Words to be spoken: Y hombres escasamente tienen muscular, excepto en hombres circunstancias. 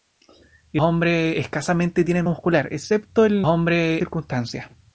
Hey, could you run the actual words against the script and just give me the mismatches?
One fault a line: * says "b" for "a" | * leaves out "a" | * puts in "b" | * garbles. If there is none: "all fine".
all fine